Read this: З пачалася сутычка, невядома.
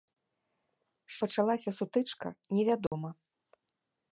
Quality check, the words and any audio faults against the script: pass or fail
fail